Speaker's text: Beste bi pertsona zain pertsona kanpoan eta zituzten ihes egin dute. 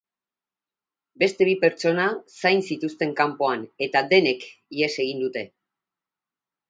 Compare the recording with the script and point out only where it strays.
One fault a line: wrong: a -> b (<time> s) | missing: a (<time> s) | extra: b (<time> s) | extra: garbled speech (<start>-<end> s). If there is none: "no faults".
wrong: pertsona -> zituzten (2.7 s)
wrong: zituzten -> denek (4.2 s)